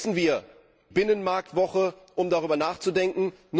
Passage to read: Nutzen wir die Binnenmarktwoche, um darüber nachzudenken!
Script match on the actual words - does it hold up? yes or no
no